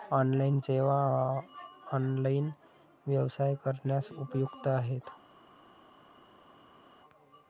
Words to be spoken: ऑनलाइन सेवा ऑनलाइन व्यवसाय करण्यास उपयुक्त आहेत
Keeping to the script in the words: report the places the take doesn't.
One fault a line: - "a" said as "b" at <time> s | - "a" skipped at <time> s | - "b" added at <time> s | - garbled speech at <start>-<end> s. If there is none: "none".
none